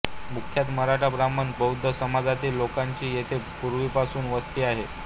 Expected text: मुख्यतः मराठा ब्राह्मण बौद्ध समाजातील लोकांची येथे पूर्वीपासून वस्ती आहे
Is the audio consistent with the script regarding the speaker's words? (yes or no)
yes